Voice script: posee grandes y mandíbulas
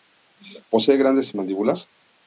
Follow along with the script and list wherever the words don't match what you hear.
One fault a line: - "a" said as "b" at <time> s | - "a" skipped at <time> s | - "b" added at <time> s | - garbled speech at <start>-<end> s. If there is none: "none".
none